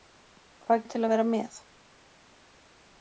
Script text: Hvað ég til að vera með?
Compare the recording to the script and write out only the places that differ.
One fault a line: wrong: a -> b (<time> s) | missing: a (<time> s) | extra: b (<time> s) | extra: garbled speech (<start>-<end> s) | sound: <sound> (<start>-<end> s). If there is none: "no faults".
no faults